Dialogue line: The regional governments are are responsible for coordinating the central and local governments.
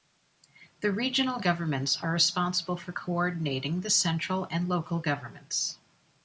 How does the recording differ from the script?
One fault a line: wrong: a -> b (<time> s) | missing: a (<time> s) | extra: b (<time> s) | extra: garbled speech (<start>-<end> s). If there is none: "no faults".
missing: are (2.1 s)